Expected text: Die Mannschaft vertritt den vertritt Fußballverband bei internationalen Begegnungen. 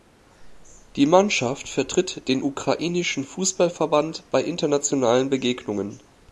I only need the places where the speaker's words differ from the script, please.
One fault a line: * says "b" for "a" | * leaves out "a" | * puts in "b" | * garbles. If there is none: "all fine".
* says "ukrainischen" for "vertritt"